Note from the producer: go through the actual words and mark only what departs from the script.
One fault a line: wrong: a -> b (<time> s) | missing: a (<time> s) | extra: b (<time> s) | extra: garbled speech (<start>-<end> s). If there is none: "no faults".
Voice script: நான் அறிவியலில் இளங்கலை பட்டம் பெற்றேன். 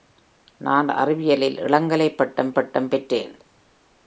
extra: பட்டம் (2.5 s)